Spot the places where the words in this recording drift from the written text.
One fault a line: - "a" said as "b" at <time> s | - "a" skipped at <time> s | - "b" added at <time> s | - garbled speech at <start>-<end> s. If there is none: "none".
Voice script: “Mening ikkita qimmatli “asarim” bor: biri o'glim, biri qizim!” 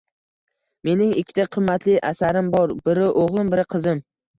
none